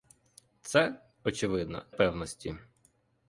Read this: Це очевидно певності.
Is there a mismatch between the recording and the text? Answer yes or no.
no